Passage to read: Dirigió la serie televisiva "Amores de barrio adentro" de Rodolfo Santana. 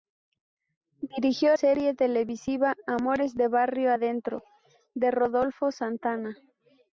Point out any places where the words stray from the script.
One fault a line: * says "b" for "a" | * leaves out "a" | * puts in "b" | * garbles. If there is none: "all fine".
* leaves out "la"